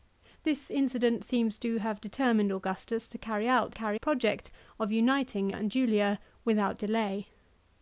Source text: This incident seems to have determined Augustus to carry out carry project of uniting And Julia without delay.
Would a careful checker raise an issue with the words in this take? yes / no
no